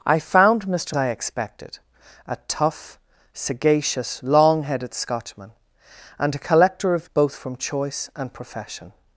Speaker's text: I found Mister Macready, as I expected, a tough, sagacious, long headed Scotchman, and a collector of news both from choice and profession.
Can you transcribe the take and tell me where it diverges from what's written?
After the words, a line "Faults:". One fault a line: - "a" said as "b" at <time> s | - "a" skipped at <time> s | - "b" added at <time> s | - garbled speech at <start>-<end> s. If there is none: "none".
I found Mister I expected, a tough, sagacious, long headed Scotchman, and a collector of both from choice and profession.
Faults:
- "Macready as" skipped at 0.9 s
- "news" skipped at 7.1 s